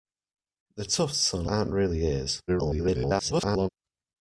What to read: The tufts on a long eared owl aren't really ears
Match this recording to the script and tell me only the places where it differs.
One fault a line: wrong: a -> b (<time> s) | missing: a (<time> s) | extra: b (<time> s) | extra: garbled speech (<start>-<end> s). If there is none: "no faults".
missing: long eared owl (1.5 s)
extra: garbled speech (2.5-3.7 s)